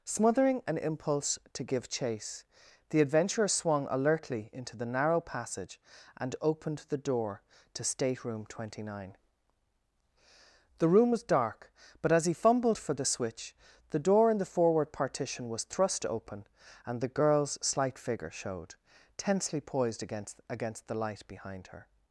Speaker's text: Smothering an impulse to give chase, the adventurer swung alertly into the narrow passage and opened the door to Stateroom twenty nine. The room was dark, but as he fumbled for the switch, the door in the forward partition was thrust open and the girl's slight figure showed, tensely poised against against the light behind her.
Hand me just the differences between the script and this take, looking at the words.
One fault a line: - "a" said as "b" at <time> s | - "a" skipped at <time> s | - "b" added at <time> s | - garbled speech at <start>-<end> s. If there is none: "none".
none